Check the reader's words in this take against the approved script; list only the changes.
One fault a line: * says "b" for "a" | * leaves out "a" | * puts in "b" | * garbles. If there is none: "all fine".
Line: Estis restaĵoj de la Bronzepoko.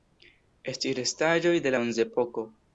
* leaves out "la"